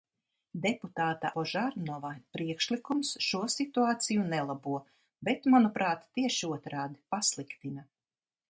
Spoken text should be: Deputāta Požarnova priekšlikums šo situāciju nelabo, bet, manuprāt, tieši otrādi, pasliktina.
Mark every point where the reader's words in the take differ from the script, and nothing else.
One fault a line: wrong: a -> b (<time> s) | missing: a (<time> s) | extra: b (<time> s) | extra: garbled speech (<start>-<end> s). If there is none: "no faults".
no faults